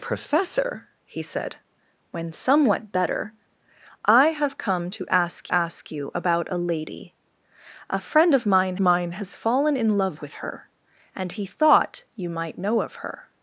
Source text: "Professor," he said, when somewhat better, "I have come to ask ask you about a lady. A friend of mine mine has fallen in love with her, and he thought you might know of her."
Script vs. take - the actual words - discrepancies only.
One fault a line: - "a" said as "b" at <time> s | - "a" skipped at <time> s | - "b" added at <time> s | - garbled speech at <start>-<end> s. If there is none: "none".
none